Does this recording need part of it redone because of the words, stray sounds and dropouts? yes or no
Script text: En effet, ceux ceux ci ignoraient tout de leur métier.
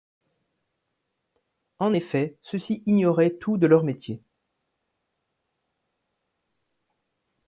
yes